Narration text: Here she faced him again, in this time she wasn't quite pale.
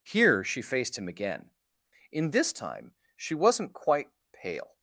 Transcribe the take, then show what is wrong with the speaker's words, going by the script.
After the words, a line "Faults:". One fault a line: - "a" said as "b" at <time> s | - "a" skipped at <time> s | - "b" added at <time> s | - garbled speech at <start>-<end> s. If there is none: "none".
Here she faced him again, in this time she wasn't quite pale.
Faults:
none